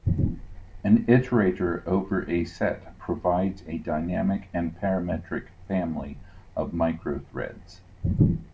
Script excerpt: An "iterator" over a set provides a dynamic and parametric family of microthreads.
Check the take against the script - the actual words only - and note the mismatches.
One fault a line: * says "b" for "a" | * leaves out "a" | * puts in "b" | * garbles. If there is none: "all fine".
all fine